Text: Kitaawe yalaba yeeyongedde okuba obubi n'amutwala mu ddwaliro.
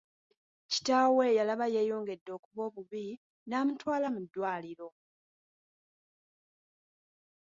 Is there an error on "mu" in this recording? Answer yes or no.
no